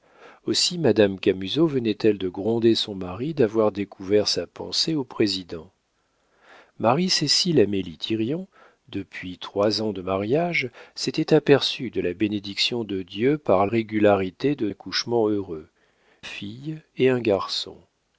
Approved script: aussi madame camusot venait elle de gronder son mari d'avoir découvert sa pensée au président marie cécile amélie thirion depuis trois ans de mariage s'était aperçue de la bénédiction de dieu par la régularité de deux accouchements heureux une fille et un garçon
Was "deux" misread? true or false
true